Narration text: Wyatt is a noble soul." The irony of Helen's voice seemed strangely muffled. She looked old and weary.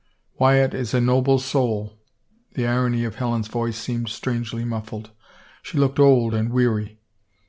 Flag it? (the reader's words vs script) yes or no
no